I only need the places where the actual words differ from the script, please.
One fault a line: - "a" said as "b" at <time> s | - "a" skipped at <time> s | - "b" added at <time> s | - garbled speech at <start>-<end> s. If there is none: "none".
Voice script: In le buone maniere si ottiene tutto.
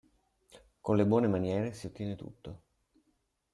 - "In" said as "Con" at 0.8 s